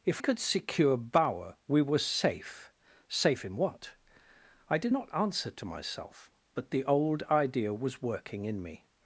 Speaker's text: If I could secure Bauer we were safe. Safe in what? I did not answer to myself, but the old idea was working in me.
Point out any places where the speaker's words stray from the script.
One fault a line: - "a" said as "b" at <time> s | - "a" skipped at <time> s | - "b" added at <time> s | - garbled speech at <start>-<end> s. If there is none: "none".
- "I" skipped at 0.2 s